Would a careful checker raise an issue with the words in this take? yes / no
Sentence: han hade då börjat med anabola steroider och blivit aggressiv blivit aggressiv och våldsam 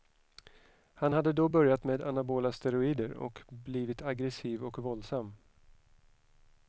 yes